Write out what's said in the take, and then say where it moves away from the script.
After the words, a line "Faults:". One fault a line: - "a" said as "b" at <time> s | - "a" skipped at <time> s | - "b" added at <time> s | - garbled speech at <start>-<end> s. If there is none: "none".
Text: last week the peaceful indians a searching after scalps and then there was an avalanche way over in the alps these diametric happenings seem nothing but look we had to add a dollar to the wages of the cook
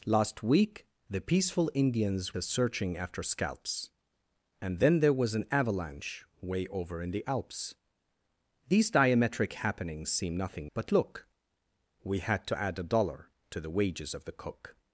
last week the peaceful indians a searching after scalps and then there was an avalanche way over in the alps these diametric happenings seem nothing but look we had to add a dollar to the wages of the cook
Faults:
none